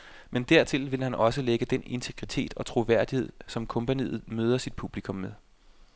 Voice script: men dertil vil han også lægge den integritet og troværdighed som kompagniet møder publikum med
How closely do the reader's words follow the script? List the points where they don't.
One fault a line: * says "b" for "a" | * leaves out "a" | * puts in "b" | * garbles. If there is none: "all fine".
* puts in "sit"